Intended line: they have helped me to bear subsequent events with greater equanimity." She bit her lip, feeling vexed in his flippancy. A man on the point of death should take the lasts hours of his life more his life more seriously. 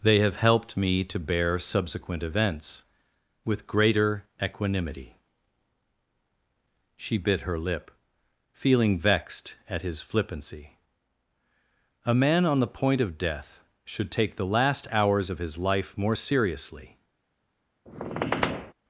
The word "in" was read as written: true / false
false